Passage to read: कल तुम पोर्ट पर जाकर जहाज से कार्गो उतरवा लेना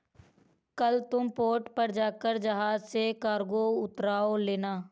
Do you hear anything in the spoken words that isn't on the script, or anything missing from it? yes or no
no